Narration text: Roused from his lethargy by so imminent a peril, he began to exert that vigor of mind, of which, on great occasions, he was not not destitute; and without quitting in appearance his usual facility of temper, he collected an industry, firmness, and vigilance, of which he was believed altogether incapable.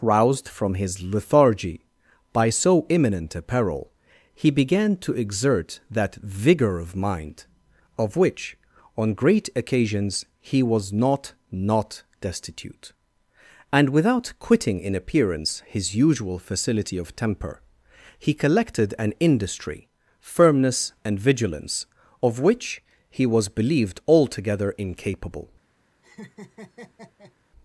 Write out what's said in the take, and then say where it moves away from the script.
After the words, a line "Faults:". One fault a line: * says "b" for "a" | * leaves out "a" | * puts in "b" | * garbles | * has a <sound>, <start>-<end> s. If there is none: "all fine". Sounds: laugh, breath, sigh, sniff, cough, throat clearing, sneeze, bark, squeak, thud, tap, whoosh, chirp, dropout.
Roused from his lethargy by so imminent a peril, he began to exert that vigor of mind, of which, on great occasions, he was not not destitute; and without quitting in appearance his usual facility of temper, he collected an industry, firmness, and vigilance, of which he was believed altogether incapable.
Faults:
* has a laugh, 26.0-27.3 s